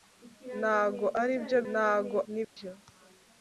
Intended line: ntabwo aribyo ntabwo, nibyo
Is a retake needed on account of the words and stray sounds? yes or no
yes